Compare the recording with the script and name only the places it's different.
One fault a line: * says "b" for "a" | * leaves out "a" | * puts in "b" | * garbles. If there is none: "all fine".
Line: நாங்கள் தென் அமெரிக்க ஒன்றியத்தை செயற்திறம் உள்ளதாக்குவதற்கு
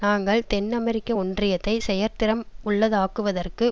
all fine